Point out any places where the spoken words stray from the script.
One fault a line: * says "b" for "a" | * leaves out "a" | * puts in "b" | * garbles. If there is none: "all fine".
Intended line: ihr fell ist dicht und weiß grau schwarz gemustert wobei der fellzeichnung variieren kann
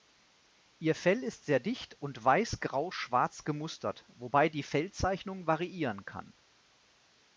* puts in "sehr"
* says "die" for "der"